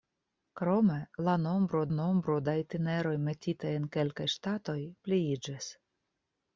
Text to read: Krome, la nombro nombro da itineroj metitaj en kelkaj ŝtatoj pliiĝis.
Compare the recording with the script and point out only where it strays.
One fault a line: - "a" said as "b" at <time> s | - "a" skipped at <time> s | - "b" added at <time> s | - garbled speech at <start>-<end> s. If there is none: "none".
none